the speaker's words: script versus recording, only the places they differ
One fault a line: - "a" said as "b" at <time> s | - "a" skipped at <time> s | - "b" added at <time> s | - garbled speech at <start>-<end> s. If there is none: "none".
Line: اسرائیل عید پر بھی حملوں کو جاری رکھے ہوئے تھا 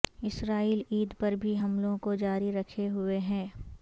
- "تھا" said as "ہے" at 3.2 s